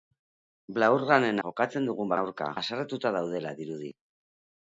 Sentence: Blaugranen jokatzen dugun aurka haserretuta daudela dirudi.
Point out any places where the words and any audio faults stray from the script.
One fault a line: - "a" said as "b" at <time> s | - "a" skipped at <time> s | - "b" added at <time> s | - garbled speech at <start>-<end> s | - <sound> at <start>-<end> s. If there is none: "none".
none